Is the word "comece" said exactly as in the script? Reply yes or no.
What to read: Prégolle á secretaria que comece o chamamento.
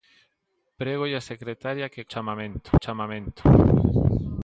no